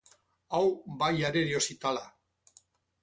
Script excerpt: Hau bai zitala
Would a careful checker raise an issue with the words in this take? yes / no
yes